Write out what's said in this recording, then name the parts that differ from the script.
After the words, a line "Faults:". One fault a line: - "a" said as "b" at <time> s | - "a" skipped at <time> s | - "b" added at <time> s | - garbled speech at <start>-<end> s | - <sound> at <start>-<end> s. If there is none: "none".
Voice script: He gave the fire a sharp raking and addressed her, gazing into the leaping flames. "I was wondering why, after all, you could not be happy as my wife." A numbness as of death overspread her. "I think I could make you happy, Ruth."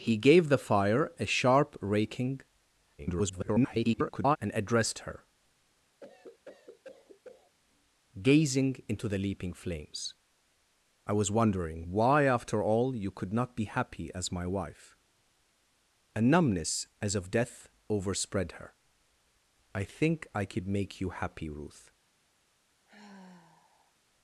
He gave the fire a sharp raking [garbled] and addressed her, gazing into the leaping flames. "I was wondering why, after all, you could not be happy as my wife." A numbness as of death overspread her. "I think I could make you happy, Ruth."
Faults:
- garbled speech at 3.0-4.4 s
- cough at 6.0-7.6 s
- sigh at 22.8-23.9 s